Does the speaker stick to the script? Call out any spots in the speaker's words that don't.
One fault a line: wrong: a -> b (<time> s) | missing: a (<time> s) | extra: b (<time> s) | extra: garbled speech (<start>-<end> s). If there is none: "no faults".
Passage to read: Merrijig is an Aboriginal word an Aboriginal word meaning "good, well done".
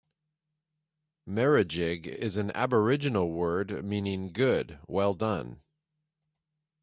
missing: an Aboriginal word (3.9 s)